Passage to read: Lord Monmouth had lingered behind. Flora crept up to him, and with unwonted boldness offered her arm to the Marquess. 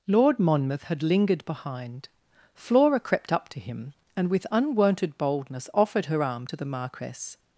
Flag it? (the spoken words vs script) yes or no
no